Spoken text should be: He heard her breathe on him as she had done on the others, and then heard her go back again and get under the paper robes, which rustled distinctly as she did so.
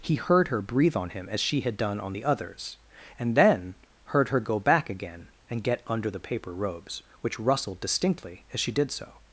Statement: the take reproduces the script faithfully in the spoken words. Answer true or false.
true